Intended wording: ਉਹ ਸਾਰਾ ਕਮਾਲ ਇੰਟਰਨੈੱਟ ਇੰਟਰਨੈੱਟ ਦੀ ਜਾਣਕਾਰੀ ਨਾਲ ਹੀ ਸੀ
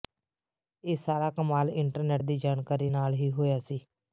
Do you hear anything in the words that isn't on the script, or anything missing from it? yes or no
yes